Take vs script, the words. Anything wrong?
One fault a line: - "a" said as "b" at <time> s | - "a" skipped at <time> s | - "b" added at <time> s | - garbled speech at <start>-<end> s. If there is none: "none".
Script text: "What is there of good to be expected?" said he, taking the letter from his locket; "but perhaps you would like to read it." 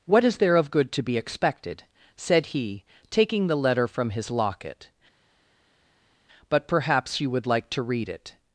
none